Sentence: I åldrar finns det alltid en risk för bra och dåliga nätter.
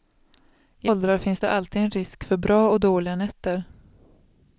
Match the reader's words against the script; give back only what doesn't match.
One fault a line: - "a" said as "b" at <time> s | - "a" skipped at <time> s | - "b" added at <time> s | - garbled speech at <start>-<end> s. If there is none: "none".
none